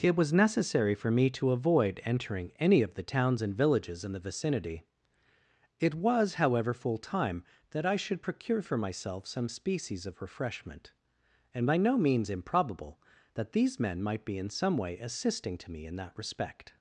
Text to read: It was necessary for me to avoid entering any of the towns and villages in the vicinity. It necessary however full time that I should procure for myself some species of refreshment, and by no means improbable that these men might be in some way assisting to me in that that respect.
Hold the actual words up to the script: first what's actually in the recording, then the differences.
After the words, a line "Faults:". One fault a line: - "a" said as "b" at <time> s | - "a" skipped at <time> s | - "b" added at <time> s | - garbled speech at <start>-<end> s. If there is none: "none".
It was necessary for me to avoid entering any of the towns and villages in the vicinity. It was however full time that I should procure for myself some species of refreshment, and by no means improbable that these men might be in some way assisting to me in that respect.
Faults:
- "necessary" said as "was" at 5.9 s
- "that" skipped at 16.1 s